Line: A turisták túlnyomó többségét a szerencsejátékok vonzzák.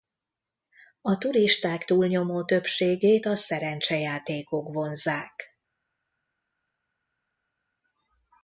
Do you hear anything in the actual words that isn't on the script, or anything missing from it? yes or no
no